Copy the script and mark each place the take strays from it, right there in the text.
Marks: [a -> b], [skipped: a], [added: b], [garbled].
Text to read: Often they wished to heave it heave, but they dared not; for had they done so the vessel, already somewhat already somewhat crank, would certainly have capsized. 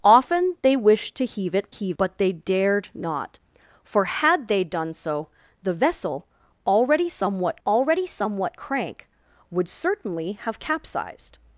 Often they wished to heave it heave, but they dared not; for had they done so the vessel, already somewhat already somewhat crank, would certainly have capsized.